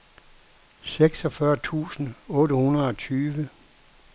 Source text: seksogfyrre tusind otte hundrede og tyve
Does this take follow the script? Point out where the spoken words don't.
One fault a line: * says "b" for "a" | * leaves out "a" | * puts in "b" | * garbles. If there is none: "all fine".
all fine